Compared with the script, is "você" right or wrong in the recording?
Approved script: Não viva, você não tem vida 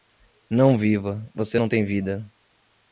right